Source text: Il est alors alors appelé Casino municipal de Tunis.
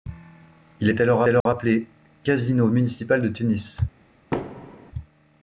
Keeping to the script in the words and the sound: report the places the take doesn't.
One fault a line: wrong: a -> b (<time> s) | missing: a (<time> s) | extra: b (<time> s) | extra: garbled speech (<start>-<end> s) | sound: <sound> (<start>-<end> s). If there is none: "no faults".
sound: dropout (1.4-1.5 s)
sound: thud (4.3-4.9 s)